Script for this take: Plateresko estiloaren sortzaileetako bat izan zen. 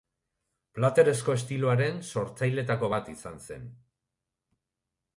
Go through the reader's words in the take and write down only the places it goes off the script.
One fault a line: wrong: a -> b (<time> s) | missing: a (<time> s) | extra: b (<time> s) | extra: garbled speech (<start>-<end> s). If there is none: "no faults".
no faults